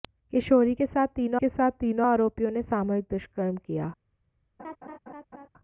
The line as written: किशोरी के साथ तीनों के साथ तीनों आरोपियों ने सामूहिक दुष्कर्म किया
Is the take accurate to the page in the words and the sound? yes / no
no